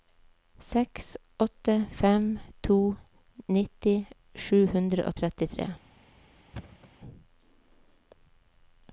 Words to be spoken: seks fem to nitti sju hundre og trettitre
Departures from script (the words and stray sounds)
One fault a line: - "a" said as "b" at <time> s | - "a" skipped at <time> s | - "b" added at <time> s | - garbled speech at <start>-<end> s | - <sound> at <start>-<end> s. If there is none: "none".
- "åtte" added at 1.4 s
- thud at 6.5-6.9 s